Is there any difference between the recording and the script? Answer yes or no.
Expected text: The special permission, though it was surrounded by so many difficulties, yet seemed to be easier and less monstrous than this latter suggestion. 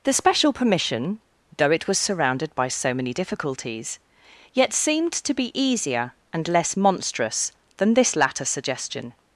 no